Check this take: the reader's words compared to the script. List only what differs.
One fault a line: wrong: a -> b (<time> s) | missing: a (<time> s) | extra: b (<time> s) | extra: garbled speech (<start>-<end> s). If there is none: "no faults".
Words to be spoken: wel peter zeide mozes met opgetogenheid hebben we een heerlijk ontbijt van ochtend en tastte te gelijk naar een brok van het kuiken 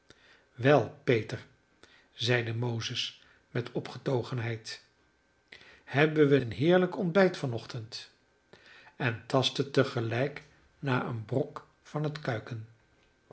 no faults